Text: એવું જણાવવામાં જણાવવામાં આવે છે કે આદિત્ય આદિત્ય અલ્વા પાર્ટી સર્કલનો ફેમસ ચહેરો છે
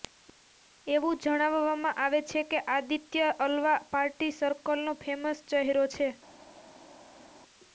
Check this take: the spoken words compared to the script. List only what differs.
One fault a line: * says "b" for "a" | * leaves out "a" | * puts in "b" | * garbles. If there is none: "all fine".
* leaves out "જણાવવામાં"
* leaves out "આદિત્ય"